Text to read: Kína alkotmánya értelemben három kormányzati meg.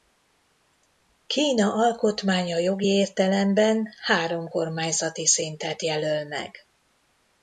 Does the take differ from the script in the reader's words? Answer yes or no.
yes